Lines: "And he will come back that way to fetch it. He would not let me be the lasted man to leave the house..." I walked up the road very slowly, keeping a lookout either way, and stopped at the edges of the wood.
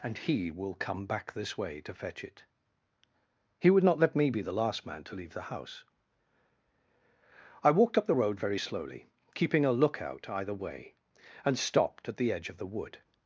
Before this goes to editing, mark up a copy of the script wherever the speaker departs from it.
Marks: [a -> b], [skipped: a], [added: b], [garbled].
"And he will come back [that -> this] way to fetch it. He would not let me be the [lasted -> last] man to leave the house..." I walked up the road very slowly, keeping a lookout either way, and stopped at the [edges -> edge] of the wood.